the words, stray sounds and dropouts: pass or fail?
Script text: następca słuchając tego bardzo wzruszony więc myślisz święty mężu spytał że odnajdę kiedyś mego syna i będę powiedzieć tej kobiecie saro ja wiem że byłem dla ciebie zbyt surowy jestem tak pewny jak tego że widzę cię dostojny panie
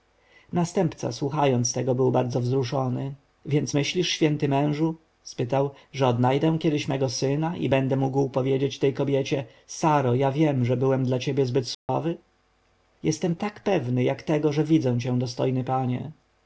fail